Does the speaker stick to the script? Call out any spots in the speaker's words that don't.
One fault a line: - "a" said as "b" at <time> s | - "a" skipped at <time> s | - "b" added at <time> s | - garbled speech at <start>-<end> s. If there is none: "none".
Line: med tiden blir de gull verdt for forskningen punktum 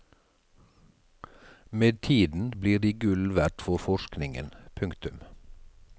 none